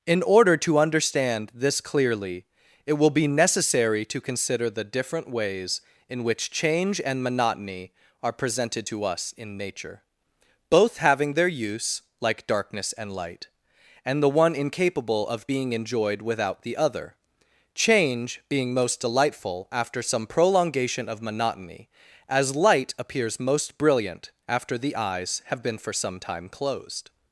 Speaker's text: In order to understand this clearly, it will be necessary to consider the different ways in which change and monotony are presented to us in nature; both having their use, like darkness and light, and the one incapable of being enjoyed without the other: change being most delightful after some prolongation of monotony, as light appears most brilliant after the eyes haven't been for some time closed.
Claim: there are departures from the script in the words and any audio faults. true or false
true